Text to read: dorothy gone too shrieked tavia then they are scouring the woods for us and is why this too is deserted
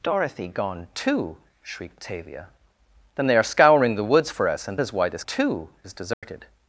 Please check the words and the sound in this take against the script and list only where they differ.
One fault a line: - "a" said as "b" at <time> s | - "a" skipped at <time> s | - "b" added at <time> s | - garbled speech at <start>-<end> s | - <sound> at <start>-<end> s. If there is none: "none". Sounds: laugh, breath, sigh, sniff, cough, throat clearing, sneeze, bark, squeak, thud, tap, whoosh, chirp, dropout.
- dropout at 6.1-6.2 s